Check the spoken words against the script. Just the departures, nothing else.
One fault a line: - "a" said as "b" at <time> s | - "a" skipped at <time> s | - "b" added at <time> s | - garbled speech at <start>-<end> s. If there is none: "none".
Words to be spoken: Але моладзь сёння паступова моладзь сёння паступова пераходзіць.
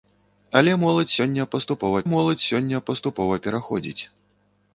none